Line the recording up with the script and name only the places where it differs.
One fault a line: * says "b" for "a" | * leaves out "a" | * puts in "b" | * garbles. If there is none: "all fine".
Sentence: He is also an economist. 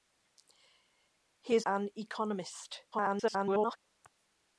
* leaves out "also"
* garbles